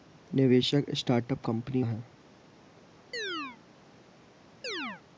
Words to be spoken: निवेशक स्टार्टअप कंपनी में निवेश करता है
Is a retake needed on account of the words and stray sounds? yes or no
yes